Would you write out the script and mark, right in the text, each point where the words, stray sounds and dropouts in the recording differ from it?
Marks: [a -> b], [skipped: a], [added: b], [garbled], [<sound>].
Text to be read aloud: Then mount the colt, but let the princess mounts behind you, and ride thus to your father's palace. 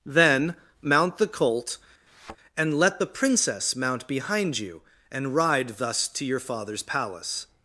Then mount the colt, [thud] [but -> and] let the princess [mounts -> mount] behind you, and ride thus to your father's palace.